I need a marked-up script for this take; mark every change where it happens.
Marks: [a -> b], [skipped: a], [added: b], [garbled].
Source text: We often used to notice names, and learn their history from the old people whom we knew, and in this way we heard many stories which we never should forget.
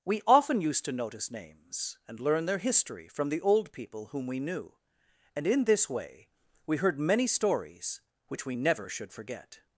We often used to notice names, and learn their history from the old people whom we knew, and in this way we heard many stories which we never should forget.